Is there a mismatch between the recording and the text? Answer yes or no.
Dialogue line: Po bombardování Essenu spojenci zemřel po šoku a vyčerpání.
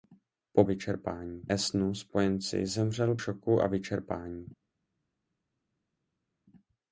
yes